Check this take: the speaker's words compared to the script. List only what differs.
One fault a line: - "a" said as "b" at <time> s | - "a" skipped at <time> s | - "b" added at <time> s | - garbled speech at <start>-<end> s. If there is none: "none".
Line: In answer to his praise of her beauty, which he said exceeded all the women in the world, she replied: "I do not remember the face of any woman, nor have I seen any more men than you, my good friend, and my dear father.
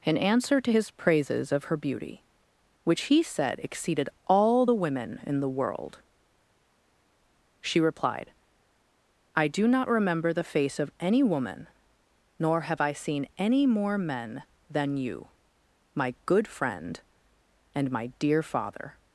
- "praise" said as "praises" at 0.9 s